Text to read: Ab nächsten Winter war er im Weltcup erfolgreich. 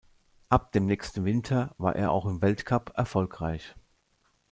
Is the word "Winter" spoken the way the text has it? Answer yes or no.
yes